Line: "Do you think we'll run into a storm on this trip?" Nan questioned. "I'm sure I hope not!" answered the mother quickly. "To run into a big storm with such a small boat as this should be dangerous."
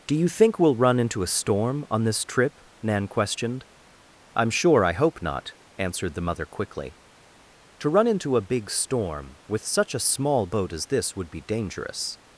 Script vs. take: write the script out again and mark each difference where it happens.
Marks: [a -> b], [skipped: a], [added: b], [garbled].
"Do you think we'll run into a storm on this trip?" Nan questioned. "I'm sure I hope not!" answered the mother quickly. "To run into a big storm with such a small boat as this [should -> would] be dangerous."